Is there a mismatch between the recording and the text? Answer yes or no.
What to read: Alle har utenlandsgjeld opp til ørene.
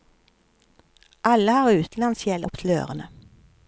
no